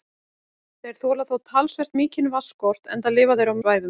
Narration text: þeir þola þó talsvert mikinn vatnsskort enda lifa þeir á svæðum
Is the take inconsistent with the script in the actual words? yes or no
no